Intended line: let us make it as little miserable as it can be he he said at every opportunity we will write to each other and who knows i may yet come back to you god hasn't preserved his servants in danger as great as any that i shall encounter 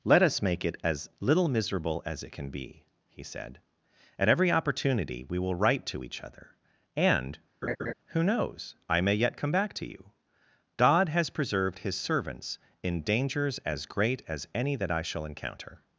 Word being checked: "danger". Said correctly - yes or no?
no